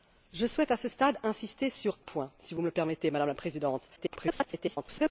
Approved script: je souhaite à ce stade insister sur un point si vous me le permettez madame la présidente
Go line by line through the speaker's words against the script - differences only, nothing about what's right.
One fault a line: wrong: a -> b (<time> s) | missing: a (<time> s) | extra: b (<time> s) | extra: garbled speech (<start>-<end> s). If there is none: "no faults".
missing: un (2.0 s)
extra: garbled speech (4.0-5.1 s)